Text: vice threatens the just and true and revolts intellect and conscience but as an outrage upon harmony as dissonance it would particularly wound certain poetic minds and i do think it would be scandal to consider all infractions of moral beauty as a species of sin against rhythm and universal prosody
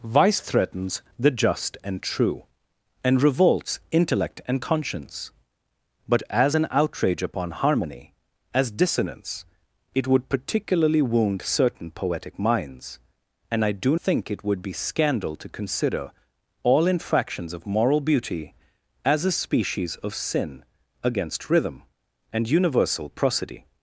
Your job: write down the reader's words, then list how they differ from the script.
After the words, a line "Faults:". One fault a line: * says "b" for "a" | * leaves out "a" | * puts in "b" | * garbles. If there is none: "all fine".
vice threatens the just and true and revolts intellect and conscience but as an outrage upon harmony as dissonance it would particularly wound certain poetic minds and i do think it would be scandal to consider all infractions of moral beauty as a species of sin against rhythm and universal prosody
Faults:
all fine